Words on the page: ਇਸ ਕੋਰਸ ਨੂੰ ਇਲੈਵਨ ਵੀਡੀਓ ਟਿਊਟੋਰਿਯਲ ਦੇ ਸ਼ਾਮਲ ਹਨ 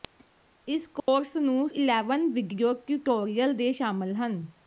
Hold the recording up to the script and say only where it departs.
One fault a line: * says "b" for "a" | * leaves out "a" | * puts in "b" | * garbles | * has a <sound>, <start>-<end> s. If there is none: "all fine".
* has a dropout, 1.0-1.1 s